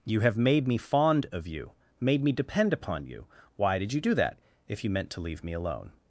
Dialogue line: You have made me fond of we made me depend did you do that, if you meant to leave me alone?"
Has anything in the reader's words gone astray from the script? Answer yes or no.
yes